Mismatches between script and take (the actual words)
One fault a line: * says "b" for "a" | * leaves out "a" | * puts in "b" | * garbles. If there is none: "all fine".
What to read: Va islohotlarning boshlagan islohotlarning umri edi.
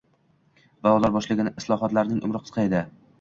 * says "ular" for "islohotlarning"
* puts in "qisqa"